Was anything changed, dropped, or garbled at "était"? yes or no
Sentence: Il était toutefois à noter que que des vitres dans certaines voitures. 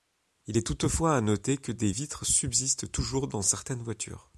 yes